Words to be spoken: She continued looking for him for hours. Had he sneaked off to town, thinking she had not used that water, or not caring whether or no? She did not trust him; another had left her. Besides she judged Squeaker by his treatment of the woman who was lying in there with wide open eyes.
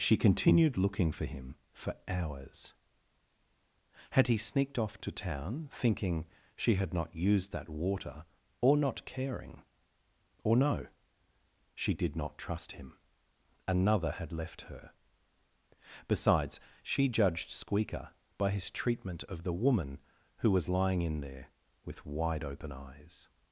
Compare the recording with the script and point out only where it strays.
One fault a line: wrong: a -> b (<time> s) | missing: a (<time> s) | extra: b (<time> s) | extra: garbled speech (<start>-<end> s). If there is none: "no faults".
missing: whether (9.6 s)